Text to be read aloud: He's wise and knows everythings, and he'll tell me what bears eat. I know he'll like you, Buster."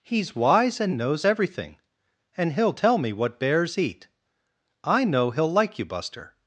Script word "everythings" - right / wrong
wrong